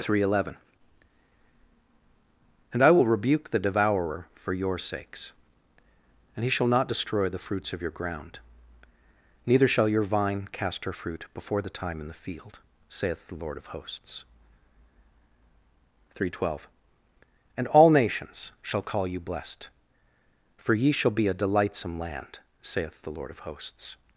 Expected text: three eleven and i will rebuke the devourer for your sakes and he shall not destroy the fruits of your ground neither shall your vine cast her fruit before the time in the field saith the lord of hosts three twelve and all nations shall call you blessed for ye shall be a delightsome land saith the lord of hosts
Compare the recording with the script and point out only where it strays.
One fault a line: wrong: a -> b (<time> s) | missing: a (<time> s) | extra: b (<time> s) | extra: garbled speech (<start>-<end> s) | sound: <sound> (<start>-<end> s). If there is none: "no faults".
no faults